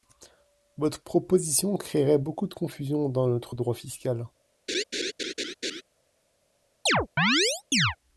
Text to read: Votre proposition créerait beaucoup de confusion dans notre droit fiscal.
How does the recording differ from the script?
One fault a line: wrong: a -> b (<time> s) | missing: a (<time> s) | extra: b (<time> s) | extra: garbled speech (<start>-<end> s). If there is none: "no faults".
no faults